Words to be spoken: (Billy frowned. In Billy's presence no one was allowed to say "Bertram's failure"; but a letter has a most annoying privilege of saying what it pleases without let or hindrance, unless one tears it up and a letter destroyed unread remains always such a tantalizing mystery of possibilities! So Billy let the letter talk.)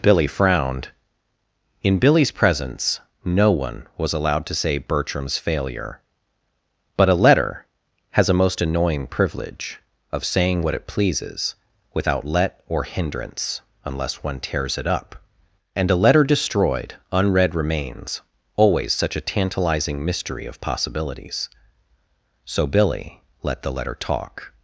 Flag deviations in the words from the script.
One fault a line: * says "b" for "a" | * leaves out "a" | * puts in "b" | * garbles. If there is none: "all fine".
all fine